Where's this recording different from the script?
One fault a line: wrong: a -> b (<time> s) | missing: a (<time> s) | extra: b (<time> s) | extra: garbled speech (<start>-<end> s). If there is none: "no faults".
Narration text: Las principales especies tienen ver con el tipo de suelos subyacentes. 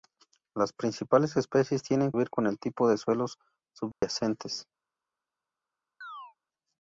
no faults